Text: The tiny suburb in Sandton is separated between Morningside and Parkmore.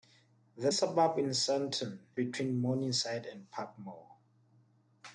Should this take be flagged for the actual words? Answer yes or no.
yes